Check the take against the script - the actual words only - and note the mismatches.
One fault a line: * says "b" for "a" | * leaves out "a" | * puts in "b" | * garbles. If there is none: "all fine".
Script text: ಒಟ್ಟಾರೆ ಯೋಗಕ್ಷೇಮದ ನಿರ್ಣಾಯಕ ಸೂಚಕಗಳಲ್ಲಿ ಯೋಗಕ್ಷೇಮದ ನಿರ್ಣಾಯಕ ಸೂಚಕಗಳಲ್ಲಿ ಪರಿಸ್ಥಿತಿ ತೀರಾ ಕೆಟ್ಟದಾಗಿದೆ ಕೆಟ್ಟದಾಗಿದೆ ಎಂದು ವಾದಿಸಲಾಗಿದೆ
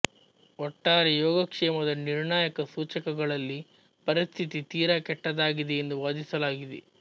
* leaves out "ಯೋಗಕ್ಷೇಮದ ನಿರ್ಣಾಯಕ ಸೂಚಕಗಳಲ್ಲಿ"
* leaves out "ಕೆಟ್ಟದಾಗಿದೆ"